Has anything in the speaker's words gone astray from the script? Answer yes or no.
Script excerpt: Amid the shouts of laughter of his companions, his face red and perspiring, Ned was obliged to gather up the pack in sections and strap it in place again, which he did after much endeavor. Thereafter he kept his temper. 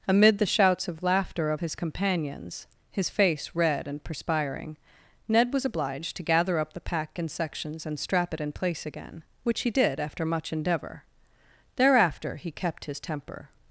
no